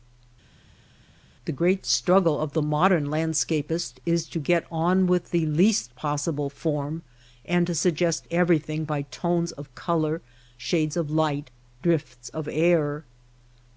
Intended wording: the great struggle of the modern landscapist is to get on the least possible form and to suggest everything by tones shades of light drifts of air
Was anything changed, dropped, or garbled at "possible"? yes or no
no